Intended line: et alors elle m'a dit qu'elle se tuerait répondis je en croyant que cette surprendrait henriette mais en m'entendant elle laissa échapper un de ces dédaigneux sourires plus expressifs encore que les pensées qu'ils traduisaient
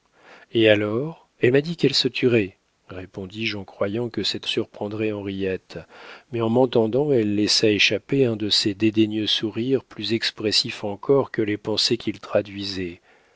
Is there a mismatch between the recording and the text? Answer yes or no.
no